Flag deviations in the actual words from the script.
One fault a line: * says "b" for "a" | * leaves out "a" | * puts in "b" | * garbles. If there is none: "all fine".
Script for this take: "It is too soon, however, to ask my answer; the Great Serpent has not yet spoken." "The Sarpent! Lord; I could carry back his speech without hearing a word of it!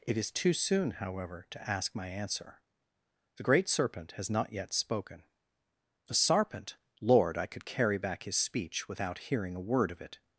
all fine